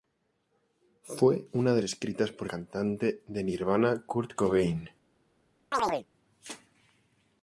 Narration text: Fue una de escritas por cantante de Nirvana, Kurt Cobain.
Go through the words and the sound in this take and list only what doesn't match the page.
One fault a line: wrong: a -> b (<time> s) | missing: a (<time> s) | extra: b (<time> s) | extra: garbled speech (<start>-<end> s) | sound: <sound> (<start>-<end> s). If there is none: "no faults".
sound: chirp (5.7-6.1 s)